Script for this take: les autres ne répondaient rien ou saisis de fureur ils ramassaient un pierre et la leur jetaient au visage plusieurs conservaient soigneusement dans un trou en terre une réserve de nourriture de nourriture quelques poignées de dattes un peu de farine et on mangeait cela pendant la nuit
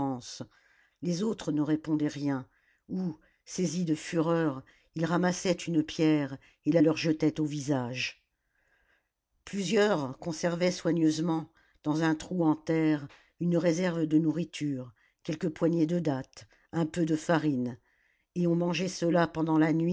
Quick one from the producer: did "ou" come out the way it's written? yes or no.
yes